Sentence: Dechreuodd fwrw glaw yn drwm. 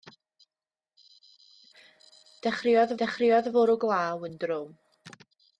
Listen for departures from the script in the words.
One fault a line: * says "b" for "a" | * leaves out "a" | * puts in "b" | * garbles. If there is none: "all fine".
* puts in "dechreuodd"